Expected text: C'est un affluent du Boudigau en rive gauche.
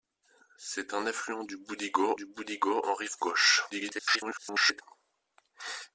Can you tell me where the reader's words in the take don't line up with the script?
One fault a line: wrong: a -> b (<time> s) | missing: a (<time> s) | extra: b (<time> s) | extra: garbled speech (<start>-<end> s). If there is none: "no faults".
extra: du Boudigau (2.1 s)
extra: garbled speech (3.7-4.8 s)